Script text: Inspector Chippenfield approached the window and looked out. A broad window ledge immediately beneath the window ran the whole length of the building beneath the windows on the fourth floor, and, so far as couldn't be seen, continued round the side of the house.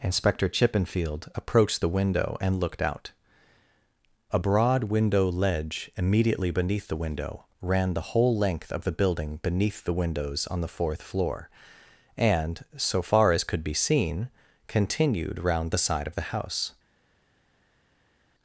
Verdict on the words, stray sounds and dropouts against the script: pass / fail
fail